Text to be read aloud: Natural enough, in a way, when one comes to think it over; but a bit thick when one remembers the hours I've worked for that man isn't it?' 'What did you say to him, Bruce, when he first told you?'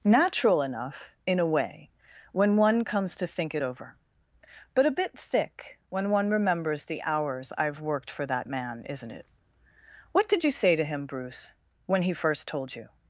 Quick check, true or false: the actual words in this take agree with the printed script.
true